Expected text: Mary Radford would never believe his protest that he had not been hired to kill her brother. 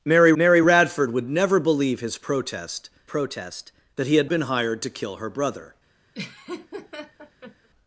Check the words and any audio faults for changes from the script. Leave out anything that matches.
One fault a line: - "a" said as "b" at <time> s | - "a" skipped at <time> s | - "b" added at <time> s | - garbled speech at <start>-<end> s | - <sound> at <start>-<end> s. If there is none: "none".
- "mary" added at 0.3 s
- "protest" added at 3.0 s
- "not" skipped at 4.3 s
- laugh at 6.1-7.7 s